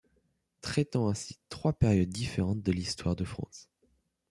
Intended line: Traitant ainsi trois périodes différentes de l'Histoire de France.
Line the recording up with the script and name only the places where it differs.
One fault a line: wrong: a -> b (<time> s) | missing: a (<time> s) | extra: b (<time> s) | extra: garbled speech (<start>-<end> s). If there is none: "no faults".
no faults